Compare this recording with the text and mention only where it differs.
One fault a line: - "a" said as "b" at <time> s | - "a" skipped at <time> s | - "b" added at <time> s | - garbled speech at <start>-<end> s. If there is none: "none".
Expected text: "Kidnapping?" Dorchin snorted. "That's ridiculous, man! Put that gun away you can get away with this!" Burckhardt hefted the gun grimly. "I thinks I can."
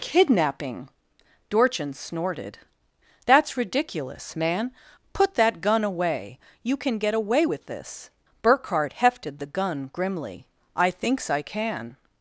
none